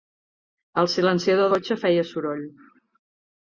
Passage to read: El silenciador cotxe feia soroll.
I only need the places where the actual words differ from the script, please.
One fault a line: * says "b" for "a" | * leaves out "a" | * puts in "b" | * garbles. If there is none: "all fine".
all fine